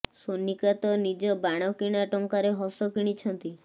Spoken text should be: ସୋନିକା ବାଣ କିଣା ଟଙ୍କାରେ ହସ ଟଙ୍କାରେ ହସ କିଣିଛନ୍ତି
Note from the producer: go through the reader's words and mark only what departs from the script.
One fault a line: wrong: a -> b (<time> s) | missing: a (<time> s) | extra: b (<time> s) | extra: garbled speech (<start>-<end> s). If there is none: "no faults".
extra: ତ ନିଜ (0.8 s)
missing: ଟଙ୍କାରେ ହସ (2.9 s)